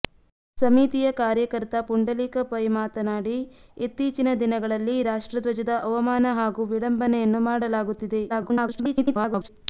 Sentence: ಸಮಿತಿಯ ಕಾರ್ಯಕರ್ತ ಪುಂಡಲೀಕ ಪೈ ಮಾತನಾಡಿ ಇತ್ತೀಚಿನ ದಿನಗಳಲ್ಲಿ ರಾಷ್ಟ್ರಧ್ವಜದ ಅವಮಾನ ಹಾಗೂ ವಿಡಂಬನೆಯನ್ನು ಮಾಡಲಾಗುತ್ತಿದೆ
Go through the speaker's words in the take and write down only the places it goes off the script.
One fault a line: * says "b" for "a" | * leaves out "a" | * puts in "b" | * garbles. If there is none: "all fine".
* garbles